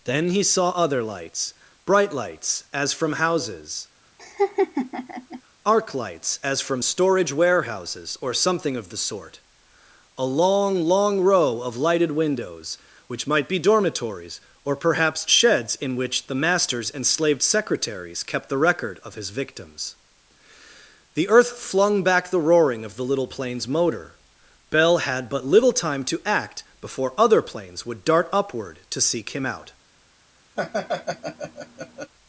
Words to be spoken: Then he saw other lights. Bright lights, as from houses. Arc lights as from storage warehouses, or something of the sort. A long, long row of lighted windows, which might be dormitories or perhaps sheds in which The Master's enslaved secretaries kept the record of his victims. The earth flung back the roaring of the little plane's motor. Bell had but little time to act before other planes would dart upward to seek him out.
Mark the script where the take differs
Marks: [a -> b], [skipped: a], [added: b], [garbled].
Then he saw other lights. Bright lights, as from houses. Arc lights as from storage warehouses, or something of the sort. A long, long row of lighted windows, which might be dormitories or perhaps sheds in which The Master's enslaved secretaries kept the record of his victims. The earth flung back the roaring of the little plane's motor. Bell had but little time to act before other planes would dart upward to seek him out.